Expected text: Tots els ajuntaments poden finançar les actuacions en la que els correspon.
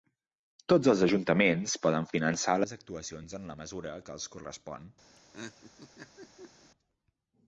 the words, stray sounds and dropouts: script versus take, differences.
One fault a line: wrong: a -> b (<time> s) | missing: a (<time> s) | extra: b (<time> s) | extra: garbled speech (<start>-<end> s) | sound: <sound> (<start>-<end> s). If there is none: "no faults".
extra: mesura (3.6 s)
sound: laugh (5.2-6.7 s)